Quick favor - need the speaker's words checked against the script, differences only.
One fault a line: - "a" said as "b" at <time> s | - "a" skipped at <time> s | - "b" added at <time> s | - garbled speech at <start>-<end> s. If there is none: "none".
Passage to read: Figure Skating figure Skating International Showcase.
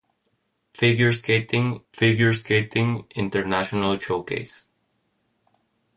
none